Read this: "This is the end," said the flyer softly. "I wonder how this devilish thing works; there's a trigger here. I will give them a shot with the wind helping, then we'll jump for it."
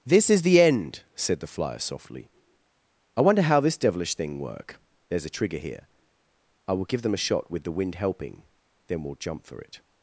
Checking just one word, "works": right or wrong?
wrong